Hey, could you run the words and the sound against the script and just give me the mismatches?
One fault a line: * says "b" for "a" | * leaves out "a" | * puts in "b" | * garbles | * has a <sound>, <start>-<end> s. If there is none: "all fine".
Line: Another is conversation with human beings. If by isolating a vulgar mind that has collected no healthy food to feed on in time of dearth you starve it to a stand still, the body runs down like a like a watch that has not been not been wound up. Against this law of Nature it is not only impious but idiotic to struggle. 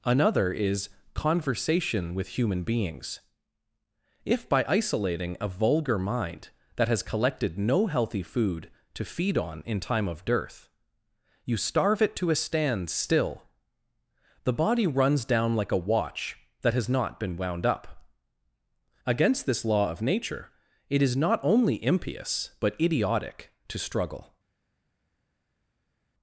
* leaves out "like a"
* leaves out "not been"